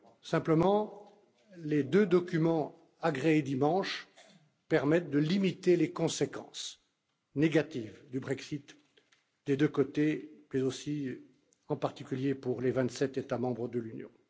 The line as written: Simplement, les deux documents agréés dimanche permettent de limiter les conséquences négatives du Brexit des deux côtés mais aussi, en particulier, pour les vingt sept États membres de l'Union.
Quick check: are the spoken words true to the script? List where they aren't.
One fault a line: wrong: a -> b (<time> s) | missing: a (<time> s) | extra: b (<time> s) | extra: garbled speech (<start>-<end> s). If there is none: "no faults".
no faults